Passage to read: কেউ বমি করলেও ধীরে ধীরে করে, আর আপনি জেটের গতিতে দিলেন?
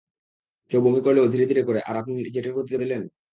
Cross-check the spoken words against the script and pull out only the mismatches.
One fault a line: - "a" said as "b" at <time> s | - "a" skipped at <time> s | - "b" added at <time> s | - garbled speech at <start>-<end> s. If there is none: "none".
none